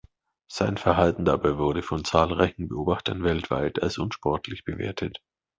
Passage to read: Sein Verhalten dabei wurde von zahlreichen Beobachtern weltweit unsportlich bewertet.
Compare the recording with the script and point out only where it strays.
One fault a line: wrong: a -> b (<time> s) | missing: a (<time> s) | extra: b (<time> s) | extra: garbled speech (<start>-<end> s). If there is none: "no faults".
extra: als (3.8 s)